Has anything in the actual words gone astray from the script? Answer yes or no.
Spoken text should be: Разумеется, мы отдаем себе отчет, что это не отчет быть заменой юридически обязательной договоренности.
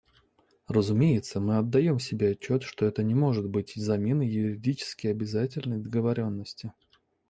yes